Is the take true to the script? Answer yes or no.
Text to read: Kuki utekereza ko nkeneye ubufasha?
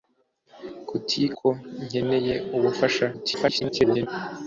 no